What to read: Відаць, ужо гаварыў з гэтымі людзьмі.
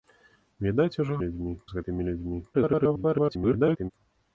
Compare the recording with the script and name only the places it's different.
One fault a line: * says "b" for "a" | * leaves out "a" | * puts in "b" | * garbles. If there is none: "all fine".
* says "людзьмі" for "гаварыў"
* garbles